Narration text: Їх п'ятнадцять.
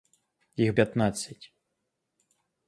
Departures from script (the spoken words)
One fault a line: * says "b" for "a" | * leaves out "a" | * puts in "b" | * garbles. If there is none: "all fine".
all fine